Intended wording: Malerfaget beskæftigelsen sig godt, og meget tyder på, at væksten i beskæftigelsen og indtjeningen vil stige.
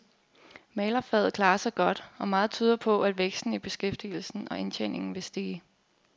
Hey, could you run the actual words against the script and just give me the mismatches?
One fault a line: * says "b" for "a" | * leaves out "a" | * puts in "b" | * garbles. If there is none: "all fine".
* says "klarer" for "beskæftigelsen"